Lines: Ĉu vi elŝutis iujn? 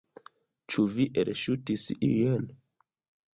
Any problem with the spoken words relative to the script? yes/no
no